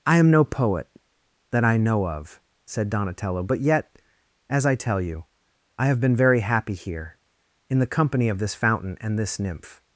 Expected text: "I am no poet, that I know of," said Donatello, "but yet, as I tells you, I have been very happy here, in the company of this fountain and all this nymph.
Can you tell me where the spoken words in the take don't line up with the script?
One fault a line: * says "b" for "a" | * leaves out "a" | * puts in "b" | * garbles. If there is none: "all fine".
* says "tell" for "tells"
* leaves out "all"